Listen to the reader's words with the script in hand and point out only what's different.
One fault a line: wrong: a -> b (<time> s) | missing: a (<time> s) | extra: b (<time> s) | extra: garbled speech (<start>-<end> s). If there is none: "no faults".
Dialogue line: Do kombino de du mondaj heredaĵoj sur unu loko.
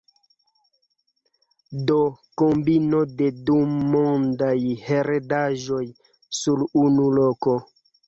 no faults